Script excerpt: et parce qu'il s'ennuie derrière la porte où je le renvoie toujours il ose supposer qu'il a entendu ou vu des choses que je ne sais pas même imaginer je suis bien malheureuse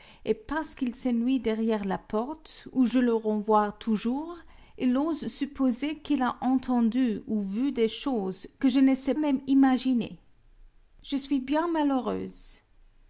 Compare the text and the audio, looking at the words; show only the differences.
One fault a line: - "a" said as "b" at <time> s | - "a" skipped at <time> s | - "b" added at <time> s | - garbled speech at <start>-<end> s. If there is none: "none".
- "pas" skipped at 9.1 s